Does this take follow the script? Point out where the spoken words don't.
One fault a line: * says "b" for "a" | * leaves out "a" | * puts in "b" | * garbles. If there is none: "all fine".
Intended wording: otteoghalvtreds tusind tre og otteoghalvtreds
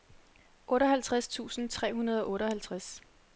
* puts in "hundrede"